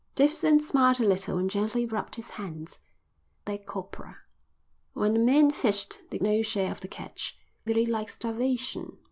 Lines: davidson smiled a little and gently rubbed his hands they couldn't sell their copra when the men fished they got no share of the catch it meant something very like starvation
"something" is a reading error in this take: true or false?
true